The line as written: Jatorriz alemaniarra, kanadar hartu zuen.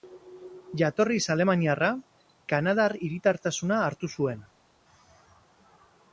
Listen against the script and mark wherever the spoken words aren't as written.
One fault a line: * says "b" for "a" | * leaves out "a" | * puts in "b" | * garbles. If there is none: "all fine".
* puts in "hiritartasuna"